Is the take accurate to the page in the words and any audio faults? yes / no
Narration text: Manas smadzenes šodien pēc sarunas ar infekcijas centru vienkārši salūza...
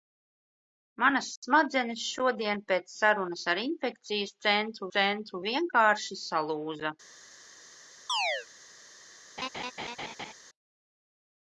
no